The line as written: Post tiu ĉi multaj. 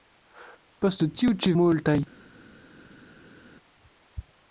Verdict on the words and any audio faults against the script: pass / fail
pass